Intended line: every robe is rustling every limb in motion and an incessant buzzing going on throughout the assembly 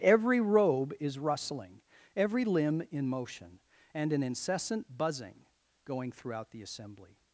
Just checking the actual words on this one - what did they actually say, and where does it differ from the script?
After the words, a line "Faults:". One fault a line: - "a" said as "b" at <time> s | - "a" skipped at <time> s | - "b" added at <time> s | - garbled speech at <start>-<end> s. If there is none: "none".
every robe is rustling every limb in motion and an incessant buzzing going throughout the assembly
Faults:
- "on" skipped at 6.1 s